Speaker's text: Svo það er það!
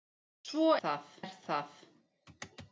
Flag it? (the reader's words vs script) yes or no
no